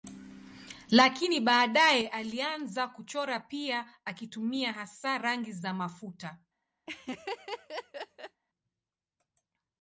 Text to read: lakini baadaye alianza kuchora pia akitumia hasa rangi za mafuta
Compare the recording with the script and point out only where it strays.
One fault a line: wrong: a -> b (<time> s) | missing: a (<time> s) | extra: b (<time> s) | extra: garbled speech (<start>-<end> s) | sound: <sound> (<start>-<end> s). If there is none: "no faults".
sound: laugh (6.9-8.4 s)